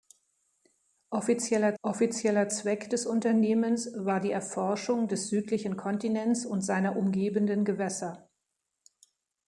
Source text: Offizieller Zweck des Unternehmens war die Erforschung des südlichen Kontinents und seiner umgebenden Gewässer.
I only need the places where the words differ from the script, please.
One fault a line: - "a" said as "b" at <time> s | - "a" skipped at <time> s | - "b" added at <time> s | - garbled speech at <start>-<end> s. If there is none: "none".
- "offizieller" added at 1.8 s